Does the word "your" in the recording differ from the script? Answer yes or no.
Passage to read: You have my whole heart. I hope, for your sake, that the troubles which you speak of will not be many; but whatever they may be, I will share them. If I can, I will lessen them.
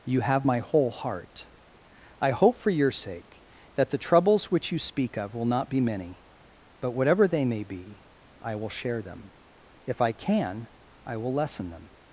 no